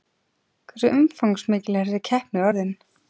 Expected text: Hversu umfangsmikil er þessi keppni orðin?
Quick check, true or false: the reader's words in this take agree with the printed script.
true